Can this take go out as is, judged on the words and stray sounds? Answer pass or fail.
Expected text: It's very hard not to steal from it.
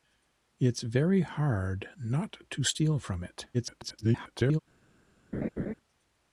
fail